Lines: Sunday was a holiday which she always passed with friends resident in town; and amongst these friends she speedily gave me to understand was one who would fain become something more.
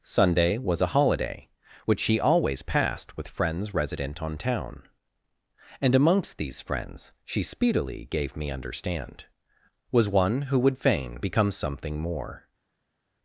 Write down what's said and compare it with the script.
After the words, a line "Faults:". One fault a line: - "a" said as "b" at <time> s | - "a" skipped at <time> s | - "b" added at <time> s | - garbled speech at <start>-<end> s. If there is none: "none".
Sunday was a holiday which she always passed with friends resident on town; and amongst these friends she speedily gave me understand was one who would fain become something more.
Faults:
- "in" said as "on" at 4.2 s
- "to" skipped at 8.5 s